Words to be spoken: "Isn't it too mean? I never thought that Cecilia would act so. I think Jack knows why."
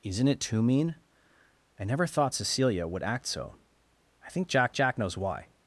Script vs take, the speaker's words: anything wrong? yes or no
yes